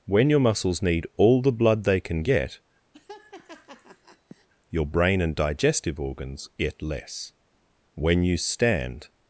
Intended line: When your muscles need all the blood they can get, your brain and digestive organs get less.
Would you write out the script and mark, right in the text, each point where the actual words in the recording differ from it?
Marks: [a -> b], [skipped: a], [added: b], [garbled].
When your muscles need all the blood they can get, your brain and digestive organs get less. [added: When you stand]